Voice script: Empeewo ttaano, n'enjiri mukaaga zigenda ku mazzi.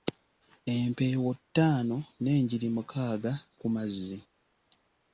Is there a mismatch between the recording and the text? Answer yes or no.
yes